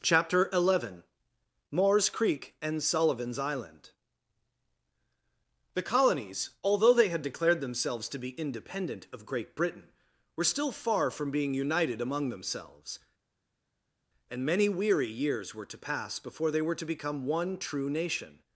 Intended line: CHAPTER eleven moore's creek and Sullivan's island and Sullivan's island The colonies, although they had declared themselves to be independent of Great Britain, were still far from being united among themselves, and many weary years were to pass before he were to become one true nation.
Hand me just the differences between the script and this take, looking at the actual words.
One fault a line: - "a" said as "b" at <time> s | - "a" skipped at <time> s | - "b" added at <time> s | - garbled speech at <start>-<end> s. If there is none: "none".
- "and Sullivan's island" skipped at 3.9 s
- "he" said as "they" at 16.5 s